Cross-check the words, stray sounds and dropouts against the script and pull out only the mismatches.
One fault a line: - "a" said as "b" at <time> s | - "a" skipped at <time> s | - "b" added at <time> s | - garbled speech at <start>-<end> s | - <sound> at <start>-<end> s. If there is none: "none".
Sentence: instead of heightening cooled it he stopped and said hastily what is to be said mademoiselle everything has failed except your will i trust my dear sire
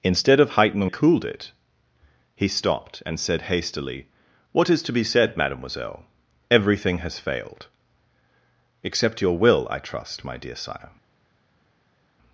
none